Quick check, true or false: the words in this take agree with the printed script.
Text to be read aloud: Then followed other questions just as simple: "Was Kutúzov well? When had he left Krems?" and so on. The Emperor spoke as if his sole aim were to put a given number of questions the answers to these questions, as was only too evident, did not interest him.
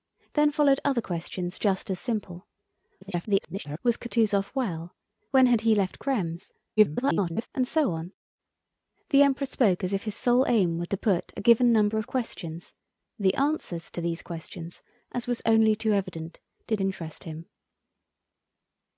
false